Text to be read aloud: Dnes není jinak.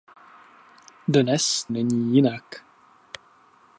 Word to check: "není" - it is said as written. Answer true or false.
true